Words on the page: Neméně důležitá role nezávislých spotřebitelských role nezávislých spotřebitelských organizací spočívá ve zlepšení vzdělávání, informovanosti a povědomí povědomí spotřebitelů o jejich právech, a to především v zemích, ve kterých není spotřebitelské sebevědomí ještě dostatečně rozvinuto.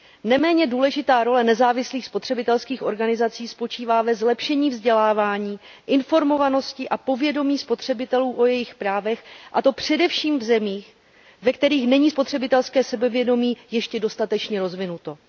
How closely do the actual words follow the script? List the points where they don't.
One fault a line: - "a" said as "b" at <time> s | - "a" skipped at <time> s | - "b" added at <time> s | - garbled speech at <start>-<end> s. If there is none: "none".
- "role nezávislých spotřebitelských" skipped at 2.8 s
- "povědomí" skipped at 7.6 s